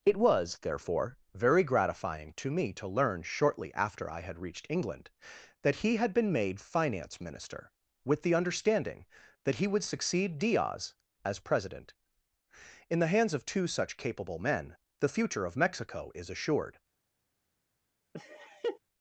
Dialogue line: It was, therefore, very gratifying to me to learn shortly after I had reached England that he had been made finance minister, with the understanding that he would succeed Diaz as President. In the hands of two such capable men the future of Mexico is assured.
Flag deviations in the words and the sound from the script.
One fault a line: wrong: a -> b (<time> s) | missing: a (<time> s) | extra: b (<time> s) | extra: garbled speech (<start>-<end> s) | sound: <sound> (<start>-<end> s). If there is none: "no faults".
sound: laugh (18.1-18.8 s)